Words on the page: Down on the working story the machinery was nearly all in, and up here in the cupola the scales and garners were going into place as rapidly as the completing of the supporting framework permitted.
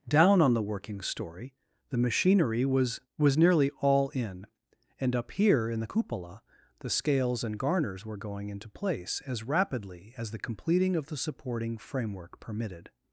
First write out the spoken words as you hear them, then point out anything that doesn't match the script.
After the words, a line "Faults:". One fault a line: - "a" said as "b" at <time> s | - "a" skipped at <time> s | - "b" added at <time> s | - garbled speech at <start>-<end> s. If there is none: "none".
Down on the working story the machinery was was nearly all in, and up here in the cupola the scales and garners were going into place as rapidly as the completing of the supporting framework permitted.
Faults:
- "was" added at 3.2 s